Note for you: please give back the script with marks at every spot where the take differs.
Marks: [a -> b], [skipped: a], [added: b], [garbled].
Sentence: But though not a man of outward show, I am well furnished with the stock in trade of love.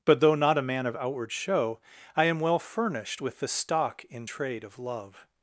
But though not a man of outward show, I am well furnished with the stock in trade of love.